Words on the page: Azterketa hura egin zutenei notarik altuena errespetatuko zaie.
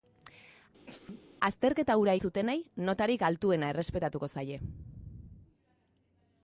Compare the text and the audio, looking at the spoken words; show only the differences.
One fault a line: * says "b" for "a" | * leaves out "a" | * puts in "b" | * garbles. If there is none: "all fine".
* leaves out "egin"